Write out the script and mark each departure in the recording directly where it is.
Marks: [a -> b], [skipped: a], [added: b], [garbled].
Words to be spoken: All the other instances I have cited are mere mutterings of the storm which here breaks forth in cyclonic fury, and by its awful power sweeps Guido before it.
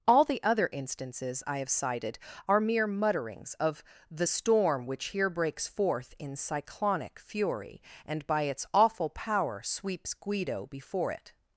All the other instances I have cited are mere mutterings of the storm which here breaks forth in cyclonic fury, and by its awful power sweeps Guido before it.